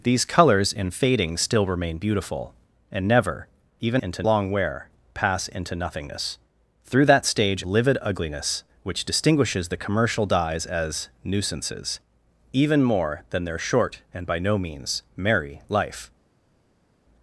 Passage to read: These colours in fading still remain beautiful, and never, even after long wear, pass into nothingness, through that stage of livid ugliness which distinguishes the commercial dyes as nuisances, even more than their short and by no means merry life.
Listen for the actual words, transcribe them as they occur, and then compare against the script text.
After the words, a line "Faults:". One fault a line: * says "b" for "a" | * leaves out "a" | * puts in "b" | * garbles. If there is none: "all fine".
These colours in fading still remain beautiful, and never, even into long wear, pass into nothingness, through that stage livid ugliness which distinguishes the commercial dyes as nuisances, even more than their short and by no means merry life.
Faults:
* says "into" for "after"
* leaves out "of"